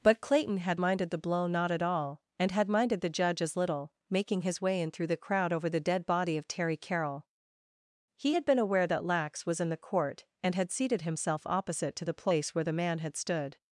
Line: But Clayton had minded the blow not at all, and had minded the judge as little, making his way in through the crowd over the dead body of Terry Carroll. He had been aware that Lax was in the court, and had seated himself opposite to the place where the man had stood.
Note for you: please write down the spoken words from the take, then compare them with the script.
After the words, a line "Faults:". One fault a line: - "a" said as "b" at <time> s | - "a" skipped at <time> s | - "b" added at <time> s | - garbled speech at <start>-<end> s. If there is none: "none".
But Clayton had minded the blow not at all, and had minded the judge as little, making his way in through the crowd over the dead body of Terry Carroll. He had been aware that Lax was in the court, and had seated himself opposite to the place where the man had stood.
Faults:
none